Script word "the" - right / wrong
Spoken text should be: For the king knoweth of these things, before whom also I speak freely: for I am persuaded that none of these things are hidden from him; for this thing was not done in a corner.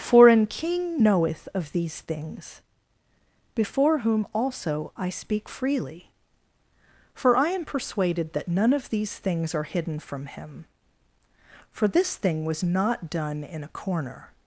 wrong